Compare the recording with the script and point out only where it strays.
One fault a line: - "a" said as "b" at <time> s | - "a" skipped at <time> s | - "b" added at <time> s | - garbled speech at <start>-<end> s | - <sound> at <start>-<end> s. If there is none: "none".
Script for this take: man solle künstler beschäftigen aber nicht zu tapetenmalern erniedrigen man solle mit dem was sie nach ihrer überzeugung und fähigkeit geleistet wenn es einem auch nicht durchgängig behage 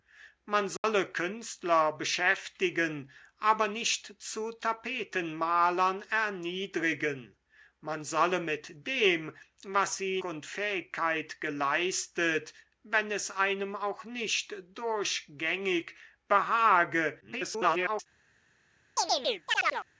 - dropout at 0.8-0.8 s
- "nach ihrer überzeugung" skipped at 10.2 s
- garbled speech at 17.2-18.1 s
- chirp at 19.0-19.9 s